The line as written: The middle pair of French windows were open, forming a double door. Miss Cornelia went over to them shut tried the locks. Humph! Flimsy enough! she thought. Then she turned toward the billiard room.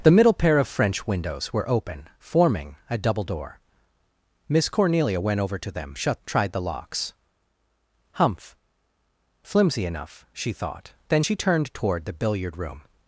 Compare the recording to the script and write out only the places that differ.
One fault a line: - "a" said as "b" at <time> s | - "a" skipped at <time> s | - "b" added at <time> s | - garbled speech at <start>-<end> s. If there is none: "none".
none